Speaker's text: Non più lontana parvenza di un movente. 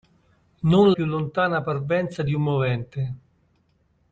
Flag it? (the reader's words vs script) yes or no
no